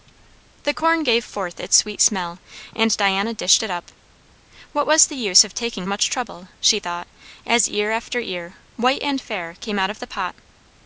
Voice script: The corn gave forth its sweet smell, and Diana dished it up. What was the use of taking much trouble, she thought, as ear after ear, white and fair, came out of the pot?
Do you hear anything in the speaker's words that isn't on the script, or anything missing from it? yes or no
no